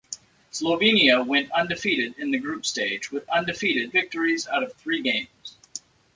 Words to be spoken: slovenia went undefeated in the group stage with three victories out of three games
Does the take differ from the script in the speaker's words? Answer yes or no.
yes